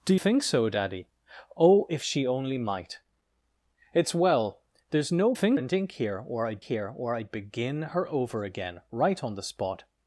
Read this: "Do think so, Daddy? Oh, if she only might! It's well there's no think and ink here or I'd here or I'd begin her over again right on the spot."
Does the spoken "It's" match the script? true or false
true